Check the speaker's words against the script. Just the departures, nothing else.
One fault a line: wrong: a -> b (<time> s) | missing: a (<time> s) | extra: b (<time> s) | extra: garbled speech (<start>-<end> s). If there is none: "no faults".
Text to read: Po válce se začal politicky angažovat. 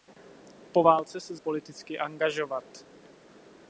missing: začal (1.4 s)